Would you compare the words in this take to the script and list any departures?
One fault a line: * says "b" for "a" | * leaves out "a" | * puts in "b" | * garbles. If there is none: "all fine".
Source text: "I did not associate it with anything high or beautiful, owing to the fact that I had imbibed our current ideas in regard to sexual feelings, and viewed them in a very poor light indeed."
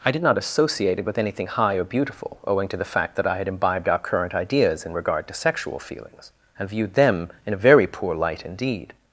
all fine